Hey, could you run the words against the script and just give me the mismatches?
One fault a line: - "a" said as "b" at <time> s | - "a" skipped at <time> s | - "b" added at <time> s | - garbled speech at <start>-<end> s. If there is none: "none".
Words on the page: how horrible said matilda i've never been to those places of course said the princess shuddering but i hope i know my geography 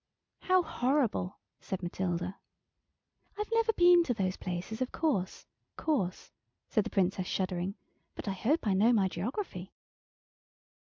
- "course" added at 5.8 s